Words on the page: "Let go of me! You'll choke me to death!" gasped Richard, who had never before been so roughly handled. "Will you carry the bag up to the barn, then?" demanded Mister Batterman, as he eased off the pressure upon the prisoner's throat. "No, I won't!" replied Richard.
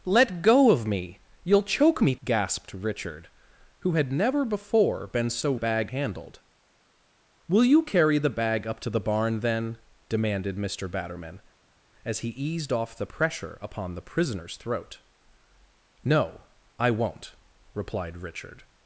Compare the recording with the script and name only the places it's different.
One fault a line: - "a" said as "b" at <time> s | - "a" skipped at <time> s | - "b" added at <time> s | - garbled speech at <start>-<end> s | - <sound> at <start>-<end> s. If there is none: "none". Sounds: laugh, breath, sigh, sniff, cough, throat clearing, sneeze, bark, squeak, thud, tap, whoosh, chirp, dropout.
- "to death" skipped at 2.1 s
- "roughly" said as "bag" at 5.5 s